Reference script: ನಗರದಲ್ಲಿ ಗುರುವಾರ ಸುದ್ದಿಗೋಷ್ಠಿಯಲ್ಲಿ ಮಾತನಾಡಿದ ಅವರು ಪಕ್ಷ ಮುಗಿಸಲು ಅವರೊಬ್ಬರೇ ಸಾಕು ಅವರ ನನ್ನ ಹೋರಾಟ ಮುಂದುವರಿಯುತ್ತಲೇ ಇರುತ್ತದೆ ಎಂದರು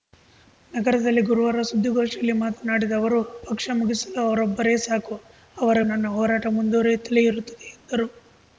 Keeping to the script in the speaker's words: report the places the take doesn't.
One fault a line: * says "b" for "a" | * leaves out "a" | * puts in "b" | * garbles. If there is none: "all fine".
all fine